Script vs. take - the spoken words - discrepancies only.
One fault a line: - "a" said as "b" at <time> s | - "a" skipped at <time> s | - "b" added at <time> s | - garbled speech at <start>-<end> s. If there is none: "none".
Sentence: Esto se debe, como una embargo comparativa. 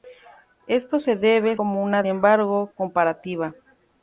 none